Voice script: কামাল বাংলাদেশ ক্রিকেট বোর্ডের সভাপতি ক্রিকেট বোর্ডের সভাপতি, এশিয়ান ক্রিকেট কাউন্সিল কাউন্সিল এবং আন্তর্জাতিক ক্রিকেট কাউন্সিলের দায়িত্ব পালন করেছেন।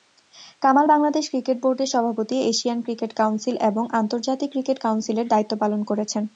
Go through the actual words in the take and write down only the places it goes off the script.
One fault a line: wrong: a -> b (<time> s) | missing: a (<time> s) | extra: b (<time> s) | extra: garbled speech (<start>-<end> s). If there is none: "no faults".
missing: ক্রিকেট বোর্ডের সভাপতি (2.4 s)
missing: কাউন্সিল (3.5 s)